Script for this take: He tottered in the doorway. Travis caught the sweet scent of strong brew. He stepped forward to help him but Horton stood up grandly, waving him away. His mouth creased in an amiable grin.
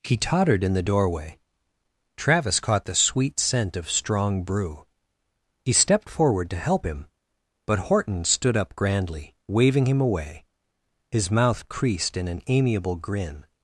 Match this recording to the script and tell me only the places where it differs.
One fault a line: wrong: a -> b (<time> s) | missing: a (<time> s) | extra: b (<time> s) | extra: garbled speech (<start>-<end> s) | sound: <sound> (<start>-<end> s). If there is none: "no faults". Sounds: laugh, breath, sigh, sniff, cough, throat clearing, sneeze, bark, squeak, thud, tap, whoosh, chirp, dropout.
no faults